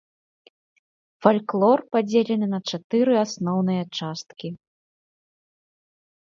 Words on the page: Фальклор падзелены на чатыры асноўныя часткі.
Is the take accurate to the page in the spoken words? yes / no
yes